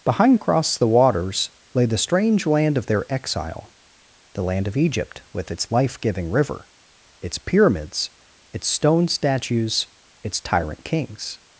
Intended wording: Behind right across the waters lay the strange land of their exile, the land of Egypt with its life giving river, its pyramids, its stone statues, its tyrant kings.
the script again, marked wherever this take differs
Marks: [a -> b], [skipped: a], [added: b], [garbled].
Behind [skipped: right] across the waters lay the strange land of their exile, the land of Egypt with its life giving river, its pyramids, its stone statues, its tyrant kings.